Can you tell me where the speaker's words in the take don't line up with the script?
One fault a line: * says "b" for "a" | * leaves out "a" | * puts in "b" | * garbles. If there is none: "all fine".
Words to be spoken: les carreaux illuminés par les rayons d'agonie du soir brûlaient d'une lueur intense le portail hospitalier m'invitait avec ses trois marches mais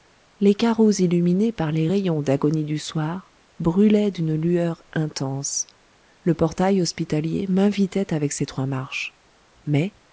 all fine